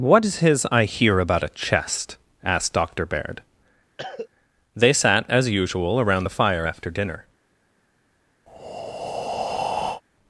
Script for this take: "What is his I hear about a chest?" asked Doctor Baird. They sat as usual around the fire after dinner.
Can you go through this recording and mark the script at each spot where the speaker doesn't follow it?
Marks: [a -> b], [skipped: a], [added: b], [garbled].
"What is his I hear about a chest?" asked Doctor Baird. They sat as usual around the fire after dinner.